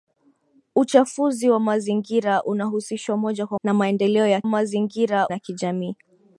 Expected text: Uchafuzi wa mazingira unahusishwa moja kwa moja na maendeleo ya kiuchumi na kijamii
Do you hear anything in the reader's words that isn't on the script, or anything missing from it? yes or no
yes